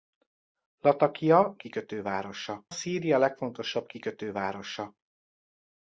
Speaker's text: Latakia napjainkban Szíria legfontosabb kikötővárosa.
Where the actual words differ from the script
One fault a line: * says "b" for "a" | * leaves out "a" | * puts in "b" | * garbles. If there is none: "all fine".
* says "kikötővárosa" for "napjainkban"